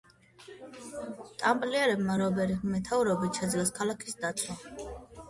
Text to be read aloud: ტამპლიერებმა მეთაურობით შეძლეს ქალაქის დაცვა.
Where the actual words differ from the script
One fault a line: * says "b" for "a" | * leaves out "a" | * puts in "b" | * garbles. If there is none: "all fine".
* puts in "რობერის"